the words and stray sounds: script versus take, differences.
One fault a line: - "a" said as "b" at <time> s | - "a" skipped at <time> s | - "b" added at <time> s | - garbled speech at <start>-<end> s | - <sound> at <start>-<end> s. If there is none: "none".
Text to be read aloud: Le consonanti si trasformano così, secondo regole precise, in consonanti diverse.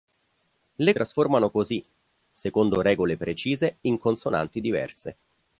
- "consonanti si" skipped at 0.9 s